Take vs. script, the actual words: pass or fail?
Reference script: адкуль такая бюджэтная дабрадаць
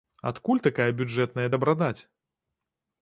pass